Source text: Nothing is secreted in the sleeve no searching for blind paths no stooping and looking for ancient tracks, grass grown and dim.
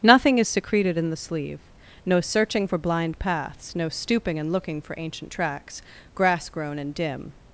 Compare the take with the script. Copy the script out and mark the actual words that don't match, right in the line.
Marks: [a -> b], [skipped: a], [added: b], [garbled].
Nothing is secreted in the sleeve no searching for blind paths no stooping and looking for ancient tracks, grass grown and dim.